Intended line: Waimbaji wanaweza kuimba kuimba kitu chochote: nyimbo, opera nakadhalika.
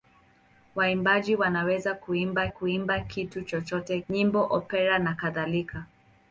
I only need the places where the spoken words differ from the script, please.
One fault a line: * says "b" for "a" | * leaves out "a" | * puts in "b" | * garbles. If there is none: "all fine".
all fine